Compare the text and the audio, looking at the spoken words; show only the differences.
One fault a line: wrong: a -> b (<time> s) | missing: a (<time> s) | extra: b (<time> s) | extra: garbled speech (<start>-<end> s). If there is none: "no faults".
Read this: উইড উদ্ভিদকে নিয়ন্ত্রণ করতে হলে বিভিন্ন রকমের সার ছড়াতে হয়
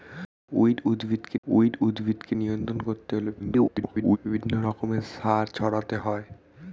extra: উইড উদ্ভিদকে (1.5 s)
extra: garbled speech (3.4-4.2 s)